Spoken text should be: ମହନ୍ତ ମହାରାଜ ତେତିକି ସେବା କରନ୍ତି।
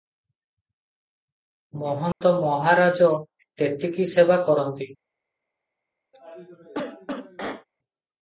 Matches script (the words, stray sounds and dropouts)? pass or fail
fail